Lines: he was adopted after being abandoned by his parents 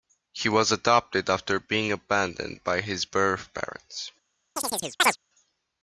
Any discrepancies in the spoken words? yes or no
yes